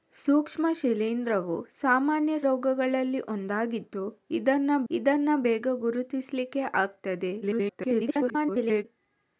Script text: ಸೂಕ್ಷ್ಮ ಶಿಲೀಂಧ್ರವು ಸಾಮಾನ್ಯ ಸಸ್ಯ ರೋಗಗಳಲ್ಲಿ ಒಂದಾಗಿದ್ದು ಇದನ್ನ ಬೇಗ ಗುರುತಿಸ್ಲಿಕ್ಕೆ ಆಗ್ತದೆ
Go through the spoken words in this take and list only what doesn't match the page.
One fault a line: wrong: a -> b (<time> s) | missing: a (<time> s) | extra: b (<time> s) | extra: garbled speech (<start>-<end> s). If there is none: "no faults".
missing: ಸಸ್ಯ (2.4 s)
extra: ಇದನ್ನ (4.9 s)
extra: garbled speech (7.4-8.9 s)